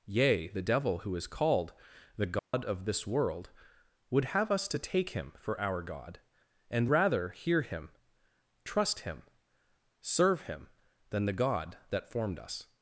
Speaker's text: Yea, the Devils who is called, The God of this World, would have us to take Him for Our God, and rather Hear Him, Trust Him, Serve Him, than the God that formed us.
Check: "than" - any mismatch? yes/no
no